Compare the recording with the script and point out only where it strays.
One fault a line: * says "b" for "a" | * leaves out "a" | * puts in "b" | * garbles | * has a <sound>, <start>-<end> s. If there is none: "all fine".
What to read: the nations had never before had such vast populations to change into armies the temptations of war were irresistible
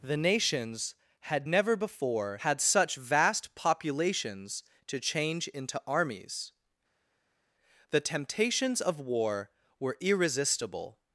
all fine